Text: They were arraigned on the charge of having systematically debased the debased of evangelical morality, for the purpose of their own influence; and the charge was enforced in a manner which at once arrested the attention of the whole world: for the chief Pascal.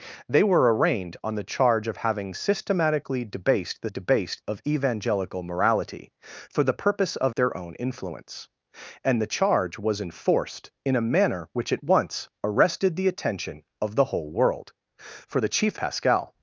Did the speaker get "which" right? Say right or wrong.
right